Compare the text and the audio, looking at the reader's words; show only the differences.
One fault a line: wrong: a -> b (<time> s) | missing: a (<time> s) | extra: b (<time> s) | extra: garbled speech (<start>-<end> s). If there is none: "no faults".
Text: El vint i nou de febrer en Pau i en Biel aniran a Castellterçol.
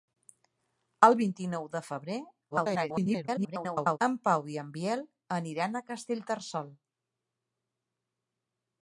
extra: garbled speech (2.5-4.0 s)